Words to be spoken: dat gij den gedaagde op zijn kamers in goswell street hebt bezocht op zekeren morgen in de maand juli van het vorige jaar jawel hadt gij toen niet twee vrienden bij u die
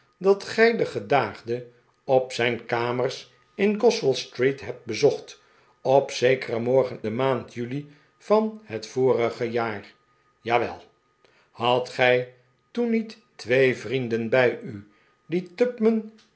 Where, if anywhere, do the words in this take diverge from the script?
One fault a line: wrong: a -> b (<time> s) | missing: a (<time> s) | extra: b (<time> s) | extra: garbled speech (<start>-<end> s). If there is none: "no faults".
missing: in (7.0 s)